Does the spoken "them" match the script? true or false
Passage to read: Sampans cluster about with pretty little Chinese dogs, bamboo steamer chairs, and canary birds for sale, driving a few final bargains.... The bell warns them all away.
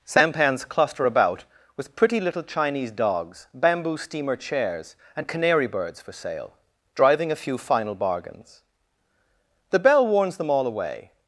true